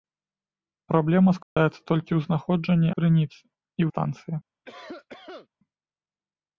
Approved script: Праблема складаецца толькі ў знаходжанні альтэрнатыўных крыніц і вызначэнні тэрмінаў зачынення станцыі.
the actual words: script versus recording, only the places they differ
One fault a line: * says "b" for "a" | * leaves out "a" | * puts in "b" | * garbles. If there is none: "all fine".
* leaves out "альтэрнатыўных"
* leaves out "вызначэнні тэрмінаў зачынення"